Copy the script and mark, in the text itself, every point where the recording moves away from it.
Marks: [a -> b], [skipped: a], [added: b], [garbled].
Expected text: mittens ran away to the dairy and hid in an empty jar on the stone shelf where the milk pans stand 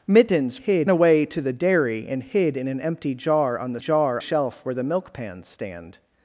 mittens [ran -> hid] away to the dairy and hid in an empty jar on the [stone -> jar] shelf where the milk pans stand